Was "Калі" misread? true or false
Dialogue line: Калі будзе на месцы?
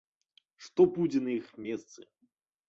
true